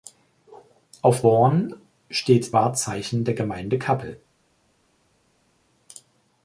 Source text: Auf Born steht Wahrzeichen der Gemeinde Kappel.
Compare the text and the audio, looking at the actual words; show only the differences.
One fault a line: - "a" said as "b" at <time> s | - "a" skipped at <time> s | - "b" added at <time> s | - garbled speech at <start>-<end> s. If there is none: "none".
none